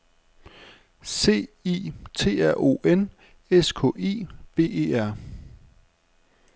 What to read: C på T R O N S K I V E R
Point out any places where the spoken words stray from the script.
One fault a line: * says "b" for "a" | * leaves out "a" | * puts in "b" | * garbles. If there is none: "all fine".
* says "I" for "på"